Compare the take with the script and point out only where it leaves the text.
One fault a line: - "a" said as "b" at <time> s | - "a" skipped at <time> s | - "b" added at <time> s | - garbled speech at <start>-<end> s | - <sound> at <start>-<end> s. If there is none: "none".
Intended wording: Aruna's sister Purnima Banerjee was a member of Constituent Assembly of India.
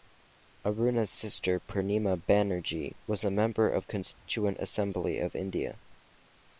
- dropout at 4.1-4.3 s